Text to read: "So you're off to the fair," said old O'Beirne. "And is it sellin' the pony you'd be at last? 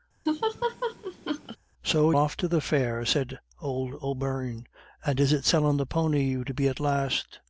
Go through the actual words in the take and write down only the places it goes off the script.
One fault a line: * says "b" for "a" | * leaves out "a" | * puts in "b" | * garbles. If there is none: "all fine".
* leaves out "you're"